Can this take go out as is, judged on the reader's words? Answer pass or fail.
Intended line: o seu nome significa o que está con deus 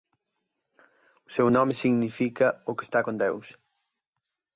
pass